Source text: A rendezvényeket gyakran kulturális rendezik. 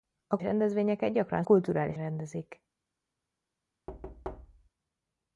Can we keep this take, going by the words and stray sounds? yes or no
no